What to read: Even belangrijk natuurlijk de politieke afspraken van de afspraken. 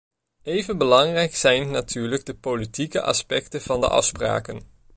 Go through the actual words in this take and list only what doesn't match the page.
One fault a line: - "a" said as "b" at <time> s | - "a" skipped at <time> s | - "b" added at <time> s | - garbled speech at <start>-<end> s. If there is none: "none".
- "zijn" added at 1.4 s
- "afspraken" said as "aspecten" at 3.0 s